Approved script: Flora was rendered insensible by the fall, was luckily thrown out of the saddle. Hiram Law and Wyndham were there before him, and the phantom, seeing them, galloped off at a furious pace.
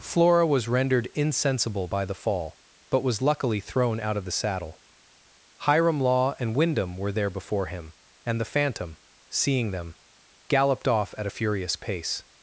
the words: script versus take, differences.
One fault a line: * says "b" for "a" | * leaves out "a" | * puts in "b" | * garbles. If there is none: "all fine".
* puts in "but"